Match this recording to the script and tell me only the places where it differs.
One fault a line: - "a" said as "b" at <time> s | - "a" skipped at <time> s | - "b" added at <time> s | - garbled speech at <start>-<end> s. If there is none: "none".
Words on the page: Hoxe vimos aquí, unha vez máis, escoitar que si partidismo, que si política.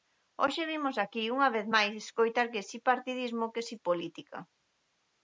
none